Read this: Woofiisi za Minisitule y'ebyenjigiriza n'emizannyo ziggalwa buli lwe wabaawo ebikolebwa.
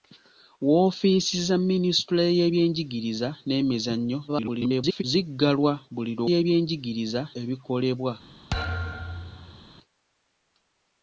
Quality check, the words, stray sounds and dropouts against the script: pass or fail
fail